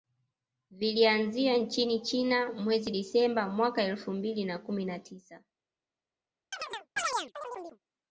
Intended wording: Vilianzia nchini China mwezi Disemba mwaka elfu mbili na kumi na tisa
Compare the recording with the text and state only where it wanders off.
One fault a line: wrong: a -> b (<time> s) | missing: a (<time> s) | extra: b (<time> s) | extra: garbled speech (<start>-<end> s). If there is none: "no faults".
no faults